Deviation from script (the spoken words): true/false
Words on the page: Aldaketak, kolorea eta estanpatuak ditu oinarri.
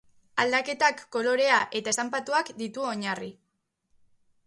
false